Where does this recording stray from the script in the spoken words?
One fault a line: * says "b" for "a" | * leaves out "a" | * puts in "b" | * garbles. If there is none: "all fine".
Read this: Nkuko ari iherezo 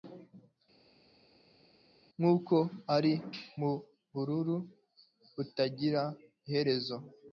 * puts in "mubururu butagira"